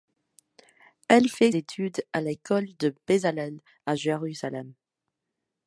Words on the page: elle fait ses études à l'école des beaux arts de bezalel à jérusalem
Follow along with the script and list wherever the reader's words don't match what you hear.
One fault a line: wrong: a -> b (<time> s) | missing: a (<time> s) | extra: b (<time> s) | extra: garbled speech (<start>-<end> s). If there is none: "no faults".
missing: ses (1.5 s)
missing: des beaux arts (2.7 s)